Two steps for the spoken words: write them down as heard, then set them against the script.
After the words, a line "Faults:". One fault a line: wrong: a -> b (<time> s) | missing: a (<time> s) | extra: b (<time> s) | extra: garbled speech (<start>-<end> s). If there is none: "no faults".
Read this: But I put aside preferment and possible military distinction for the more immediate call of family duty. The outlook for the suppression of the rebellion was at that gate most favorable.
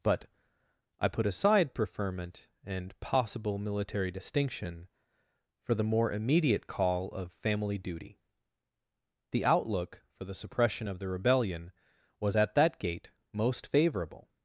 But I put aside preferment and possible military distinction for the more immediate call of family duty. The outlook for the suppression of the rebellion was at that gate most favorable.
Faults:
no faults